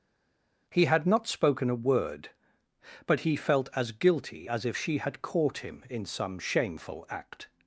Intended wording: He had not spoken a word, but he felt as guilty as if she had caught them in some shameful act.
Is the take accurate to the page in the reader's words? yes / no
no